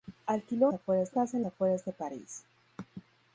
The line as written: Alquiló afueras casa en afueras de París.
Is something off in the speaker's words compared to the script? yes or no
no